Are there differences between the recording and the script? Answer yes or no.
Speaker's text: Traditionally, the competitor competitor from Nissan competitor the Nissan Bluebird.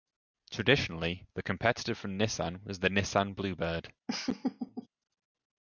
yes